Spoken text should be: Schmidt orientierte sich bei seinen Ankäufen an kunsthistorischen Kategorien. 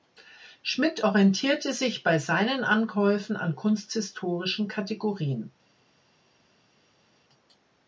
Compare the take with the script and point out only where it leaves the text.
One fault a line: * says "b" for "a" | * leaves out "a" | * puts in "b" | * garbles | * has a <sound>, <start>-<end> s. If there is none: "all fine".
all fine